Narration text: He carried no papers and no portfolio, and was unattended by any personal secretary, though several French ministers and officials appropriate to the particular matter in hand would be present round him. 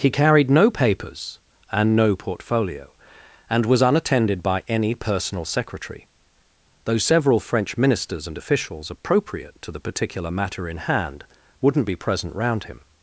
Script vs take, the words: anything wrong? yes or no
yes